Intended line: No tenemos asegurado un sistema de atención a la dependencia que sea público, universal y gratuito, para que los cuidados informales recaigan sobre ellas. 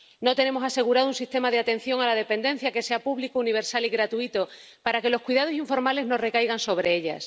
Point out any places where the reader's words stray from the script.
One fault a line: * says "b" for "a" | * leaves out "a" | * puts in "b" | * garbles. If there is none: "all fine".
* puts in "no"